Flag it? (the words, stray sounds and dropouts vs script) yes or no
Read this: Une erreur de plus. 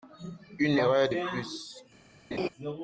yes